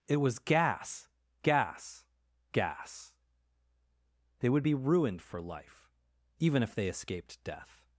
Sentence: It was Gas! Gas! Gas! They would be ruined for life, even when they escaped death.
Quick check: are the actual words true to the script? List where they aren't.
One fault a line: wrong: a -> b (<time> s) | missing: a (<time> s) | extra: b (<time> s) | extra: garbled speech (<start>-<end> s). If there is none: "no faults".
wrong: when -> if (6.6 s)